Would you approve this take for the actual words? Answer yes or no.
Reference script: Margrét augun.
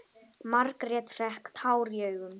no